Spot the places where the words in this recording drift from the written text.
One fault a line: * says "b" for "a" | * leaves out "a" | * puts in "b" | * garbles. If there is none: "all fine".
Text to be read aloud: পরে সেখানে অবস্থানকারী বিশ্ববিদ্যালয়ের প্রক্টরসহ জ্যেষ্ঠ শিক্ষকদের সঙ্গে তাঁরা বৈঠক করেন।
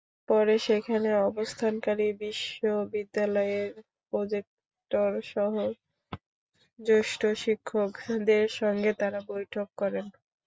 all fine